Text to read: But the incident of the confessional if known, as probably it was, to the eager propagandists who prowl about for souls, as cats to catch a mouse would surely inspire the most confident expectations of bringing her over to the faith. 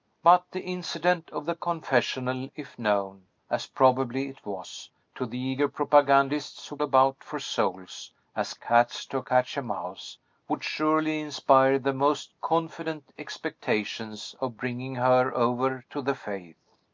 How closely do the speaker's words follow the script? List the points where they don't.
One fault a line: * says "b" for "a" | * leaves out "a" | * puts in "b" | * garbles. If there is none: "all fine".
* leaves out "prowl"